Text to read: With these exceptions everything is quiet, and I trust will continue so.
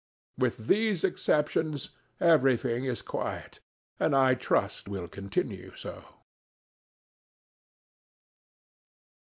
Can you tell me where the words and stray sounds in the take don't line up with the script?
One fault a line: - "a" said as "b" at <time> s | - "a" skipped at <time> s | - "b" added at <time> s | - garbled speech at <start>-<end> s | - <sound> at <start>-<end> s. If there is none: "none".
none